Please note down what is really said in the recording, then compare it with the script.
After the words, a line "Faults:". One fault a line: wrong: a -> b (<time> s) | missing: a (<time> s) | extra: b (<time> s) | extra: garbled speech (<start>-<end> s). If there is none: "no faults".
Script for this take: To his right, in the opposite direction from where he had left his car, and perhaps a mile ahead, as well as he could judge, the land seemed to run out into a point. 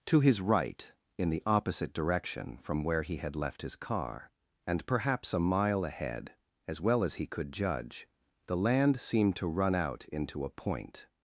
To his right, in the opposite direction from where he had left his car, and perhaps a mile ahead, as well as he could judge, the land seemed to run out into a point.
Faults:
no faults